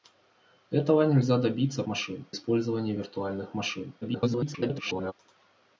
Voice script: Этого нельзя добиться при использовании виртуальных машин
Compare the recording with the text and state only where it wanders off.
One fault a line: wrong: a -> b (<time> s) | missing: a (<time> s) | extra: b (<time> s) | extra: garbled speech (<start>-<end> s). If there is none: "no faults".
wrong: при -> машин (1.9 s)
extra: garbled speech (4.0-5.1 s)